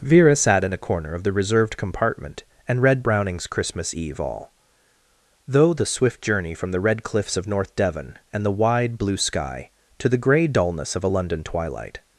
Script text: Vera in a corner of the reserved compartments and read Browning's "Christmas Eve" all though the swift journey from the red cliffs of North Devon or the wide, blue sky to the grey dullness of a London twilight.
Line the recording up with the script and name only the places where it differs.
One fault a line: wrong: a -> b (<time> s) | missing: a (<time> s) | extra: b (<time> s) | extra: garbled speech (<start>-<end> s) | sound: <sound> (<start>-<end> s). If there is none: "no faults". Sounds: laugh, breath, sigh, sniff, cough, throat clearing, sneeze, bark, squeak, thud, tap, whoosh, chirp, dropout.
extra: sat (0.3 s)
wrong: compartments -> compartment (1.8 s)
wrong: or -> and (8.3 s)